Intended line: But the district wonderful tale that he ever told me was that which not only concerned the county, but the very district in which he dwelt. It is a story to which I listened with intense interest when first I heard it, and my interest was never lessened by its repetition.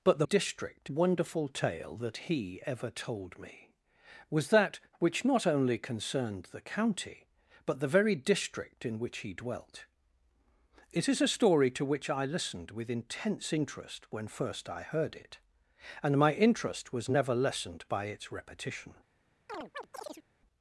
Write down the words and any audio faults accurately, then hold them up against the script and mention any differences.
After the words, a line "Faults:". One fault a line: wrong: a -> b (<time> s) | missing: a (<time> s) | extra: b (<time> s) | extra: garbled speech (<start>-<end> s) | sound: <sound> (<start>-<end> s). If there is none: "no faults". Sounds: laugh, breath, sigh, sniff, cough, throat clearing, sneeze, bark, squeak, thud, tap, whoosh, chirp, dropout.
But the district wonderful tale that he ever told me was that which not only concerned the county, but the very district in which he dwelt. It is a story to which I listened with intense interest when first I heard it, and my interest was never lessened by its repetition.
Faults:
sound: chirp (19.5-20.2 s)